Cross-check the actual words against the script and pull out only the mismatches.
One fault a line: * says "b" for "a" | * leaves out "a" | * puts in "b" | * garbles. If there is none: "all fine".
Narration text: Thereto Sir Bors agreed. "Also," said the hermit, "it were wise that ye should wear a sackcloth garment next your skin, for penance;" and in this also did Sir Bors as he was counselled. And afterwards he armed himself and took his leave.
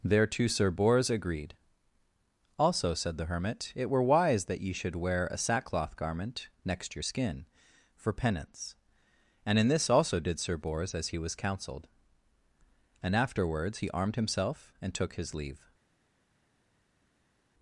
all fine